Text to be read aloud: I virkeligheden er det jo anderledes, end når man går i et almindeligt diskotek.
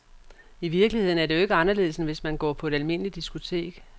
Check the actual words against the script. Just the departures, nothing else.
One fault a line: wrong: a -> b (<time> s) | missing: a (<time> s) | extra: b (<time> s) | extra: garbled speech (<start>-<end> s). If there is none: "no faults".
extra: ikke (1.4 s)
wrong: når -> hvis (2.0 s)
wrong: i -> på (2.5 s)